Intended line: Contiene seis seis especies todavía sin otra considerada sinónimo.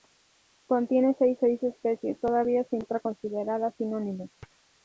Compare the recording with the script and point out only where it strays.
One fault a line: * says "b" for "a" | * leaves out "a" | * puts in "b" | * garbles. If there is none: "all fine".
all fine